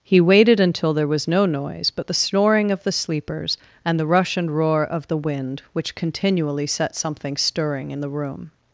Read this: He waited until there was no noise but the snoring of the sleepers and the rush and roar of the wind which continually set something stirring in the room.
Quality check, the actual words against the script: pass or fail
pass